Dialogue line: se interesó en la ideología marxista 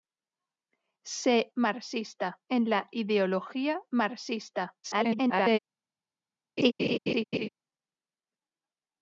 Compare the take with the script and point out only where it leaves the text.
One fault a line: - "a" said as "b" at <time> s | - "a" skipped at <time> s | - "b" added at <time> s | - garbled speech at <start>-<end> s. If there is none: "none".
- "interesó" said as "marxista" at 1.5 s
- garbled speech at 4.8-5.6 s